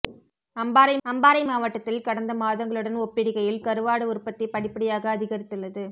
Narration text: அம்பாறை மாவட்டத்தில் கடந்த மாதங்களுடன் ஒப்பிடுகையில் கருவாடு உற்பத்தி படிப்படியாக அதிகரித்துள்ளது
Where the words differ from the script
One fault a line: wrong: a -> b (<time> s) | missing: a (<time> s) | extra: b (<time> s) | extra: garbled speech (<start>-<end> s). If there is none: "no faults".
extra: அம்பாறை (1.1 s)